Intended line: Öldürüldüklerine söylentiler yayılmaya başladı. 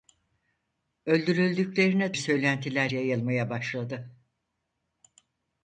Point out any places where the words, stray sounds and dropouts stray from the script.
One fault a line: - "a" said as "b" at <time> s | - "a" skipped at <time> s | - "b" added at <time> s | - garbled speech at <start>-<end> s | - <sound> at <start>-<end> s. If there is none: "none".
none